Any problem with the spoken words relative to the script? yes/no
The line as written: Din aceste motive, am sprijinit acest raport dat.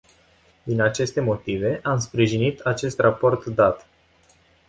no